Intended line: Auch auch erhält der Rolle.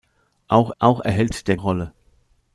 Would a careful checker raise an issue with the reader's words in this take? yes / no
no